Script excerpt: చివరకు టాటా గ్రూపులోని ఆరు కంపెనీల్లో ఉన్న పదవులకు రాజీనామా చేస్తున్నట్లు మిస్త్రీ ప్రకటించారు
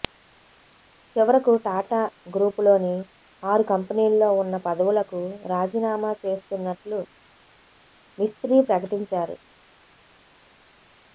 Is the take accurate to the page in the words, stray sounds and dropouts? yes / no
yes